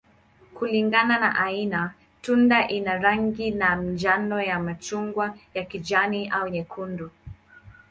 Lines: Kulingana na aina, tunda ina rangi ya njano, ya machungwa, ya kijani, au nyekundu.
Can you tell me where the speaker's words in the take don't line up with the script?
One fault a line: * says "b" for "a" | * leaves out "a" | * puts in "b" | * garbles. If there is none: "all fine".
all fine